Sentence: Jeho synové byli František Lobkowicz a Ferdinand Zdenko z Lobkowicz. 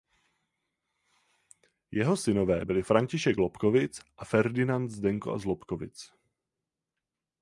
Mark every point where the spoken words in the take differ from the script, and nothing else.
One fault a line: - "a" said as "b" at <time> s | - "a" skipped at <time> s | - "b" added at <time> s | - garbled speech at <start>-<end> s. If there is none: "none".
none